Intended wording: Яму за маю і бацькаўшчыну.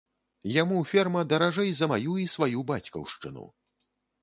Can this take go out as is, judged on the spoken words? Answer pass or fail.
fail